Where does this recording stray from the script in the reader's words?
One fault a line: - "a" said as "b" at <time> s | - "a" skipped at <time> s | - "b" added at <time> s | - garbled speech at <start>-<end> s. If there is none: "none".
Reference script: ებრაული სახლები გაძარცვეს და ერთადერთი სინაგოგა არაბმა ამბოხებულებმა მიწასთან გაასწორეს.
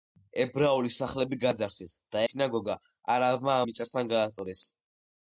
- "ერთადერთი" skipped at 2.2 s
- "ამბოხებულებმა" skipped at 3.6 s